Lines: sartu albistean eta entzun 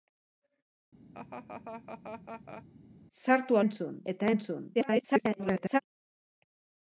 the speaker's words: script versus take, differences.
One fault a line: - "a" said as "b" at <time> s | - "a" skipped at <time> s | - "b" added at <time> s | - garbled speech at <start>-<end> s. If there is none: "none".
- "albistean" said as "entzun" at 3.6 s
- garbled speech at 4.7-5.8 s